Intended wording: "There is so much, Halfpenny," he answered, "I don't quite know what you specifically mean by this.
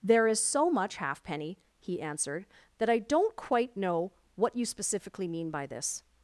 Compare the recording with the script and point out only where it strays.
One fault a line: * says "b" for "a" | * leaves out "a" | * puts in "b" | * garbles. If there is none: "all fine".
* puts in "that"